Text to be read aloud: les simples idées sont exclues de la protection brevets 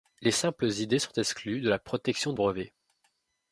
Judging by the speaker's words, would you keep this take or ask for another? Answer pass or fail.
pass